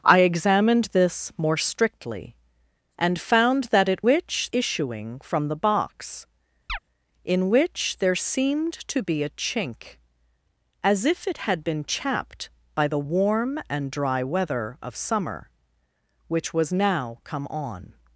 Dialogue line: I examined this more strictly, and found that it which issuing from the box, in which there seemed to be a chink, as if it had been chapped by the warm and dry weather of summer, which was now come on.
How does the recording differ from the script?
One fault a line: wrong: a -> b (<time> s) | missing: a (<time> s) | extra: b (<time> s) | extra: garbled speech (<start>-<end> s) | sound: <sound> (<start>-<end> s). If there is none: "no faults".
sound: chirp (6.7-6.8 s)